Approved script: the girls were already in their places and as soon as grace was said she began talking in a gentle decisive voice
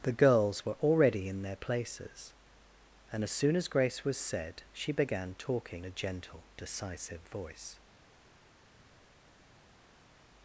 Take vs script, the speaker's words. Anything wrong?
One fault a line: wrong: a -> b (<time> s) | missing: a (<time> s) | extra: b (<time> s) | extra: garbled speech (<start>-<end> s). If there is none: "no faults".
missing: in (5.8 s)